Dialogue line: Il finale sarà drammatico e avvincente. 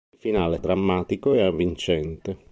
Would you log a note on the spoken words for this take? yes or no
yes